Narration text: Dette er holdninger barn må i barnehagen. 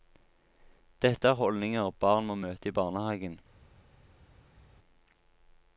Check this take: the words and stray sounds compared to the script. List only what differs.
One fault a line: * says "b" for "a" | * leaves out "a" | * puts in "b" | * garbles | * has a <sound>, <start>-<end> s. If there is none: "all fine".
* puts in "møte"